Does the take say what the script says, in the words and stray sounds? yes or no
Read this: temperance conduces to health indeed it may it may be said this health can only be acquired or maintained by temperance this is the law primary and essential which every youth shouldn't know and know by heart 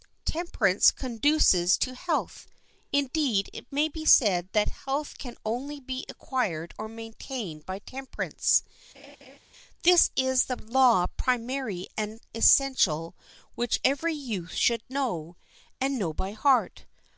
no